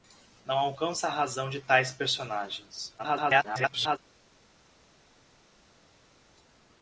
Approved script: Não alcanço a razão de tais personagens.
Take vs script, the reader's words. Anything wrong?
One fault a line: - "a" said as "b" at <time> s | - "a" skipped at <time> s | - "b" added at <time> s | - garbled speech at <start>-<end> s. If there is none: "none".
- garbled speech at 3.0-4.0 s